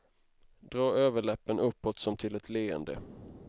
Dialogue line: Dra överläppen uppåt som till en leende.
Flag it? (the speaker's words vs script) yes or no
yes